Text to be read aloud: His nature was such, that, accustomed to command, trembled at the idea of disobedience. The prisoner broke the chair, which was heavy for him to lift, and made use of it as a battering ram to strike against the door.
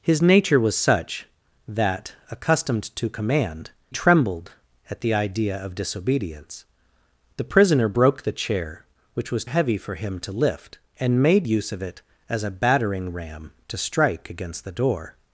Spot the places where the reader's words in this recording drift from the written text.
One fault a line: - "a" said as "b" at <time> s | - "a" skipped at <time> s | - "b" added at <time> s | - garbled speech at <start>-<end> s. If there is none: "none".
none